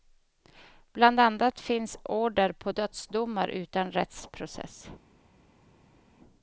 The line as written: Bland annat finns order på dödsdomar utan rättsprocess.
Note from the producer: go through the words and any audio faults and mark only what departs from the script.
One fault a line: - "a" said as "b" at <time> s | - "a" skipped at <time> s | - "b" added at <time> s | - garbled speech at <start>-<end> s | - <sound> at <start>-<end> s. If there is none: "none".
none